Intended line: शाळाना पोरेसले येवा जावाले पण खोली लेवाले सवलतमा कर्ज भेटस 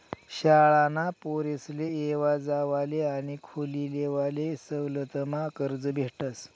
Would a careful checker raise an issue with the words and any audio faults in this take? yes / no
yes